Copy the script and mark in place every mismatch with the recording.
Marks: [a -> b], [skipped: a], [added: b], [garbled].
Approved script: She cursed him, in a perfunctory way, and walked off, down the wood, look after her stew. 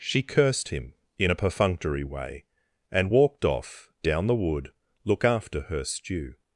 She cursed him, in a perfunctory way, and walked off, down the wood, look after her stew.